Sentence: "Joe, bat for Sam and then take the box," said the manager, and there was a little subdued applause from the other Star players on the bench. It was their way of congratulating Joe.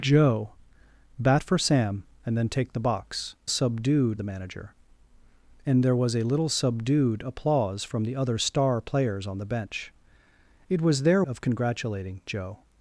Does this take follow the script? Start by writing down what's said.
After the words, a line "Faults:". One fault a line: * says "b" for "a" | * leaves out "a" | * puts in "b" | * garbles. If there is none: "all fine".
"Joe, bat for Sam and then take the box," subdued the manager, and there was a little subdued applause from the other Star players on the bench. It was their of congratulating Joe.
Faults:
* says "subdued" for "said"
* leaves out "way"